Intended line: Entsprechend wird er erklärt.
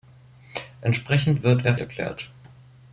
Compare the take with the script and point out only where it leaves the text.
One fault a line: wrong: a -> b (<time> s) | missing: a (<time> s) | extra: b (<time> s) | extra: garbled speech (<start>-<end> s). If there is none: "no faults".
no faults